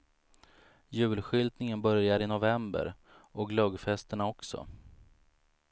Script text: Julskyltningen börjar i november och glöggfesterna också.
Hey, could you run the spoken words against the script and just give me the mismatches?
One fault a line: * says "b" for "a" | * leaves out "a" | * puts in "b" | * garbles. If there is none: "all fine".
all fine